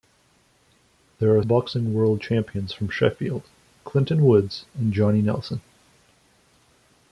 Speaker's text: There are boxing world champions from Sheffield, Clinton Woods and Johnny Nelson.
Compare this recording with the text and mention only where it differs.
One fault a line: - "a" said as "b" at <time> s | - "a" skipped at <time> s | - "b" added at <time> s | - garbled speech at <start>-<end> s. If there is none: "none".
none